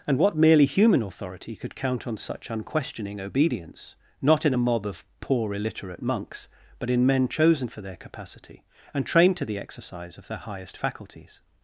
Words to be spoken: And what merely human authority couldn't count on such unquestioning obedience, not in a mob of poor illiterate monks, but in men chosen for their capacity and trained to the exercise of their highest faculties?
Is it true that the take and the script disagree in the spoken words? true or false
true